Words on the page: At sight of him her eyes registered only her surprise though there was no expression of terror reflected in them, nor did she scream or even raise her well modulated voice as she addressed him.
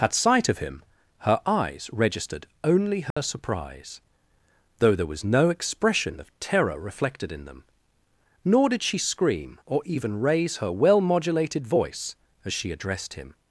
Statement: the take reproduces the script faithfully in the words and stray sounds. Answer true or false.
false